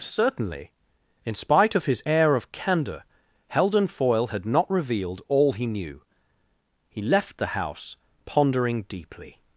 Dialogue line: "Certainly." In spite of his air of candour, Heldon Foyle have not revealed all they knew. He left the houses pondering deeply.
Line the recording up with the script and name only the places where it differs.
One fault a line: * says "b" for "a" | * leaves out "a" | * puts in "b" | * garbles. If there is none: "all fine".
* says "had" for "have"
* says "he" for "they"
* says "house" for "houses"